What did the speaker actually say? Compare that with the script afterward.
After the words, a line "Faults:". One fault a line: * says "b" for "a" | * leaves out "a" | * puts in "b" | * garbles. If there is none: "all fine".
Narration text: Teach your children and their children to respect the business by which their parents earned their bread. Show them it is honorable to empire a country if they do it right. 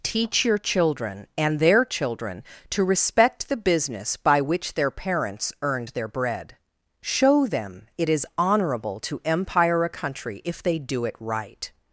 Teach your children and their children to respect the business by which their parents earned their bread. Show them it is honorable to empire a country if they do it right.
Faults:
all fine